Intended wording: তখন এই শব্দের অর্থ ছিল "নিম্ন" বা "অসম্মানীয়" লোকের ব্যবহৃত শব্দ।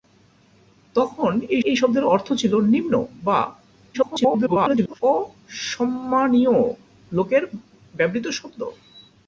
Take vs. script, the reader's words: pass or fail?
fail